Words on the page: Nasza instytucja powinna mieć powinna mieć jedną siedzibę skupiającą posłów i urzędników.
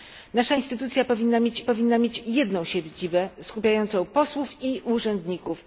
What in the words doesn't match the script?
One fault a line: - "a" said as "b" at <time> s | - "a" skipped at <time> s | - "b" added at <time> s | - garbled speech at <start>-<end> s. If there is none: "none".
none